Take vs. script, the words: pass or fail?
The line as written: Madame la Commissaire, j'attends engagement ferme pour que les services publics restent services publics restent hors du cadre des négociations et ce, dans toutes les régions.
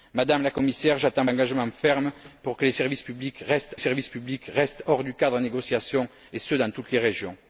pass